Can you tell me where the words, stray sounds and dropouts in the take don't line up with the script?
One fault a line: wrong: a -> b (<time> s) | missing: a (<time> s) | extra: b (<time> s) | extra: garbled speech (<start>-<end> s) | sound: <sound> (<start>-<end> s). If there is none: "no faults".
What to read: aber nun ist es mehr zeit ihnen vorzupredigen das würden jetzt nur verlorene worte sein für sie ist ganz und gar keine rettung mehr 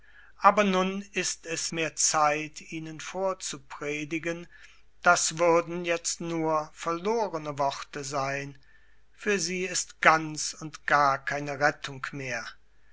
no faults